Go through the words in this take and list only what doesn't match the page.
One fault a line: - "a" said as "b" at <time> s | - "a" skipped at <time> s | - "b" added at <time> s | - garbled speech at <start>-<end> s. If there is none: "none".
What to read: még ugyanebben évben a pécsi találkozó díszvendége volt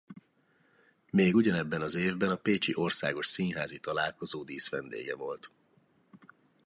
- "az" added at 1.8 s
- "országos színházi" added at 2.7 s